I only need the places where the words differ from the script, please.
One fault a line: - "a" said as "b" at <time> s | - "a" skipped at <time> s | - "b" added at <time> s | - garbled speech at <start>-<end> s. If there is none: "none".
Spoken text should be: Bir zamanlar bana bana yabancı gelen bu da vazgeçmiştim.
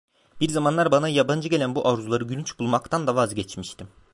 - "bana" skipped at 1.1 s
- "arzuları gülünç bulmaktan" added at 1.9 s